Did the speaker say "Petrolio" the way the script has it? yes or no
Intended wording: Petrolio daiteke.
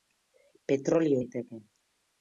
yes